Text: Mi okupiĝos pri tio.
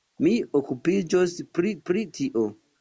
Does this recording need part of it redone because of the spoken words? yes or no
yes